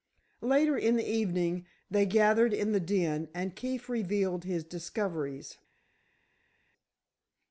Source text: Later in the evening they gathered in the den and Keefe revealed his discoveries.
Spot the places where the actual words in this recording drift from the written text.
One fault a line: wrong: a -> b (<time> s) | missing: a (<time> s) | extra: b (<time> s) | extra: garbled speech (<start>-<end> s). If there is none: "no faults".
no faults